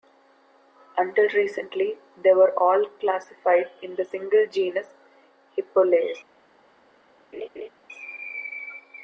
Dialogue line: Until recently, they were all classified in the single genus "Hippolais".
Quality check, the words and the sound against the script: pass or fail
fail